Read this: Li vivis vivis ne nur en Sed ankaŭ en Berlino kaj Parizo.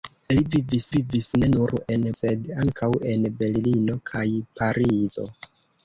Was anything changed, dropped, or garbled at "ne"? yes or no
no